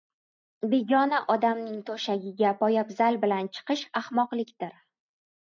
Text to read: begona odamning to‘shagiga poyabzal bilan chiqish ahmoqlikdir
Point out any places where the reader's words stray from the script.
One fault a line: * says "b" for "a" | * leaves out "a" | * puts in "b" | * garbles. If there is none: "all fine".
all fine